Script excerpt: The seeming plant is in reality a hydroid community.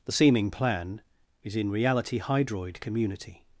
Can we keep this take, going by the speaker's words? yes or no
no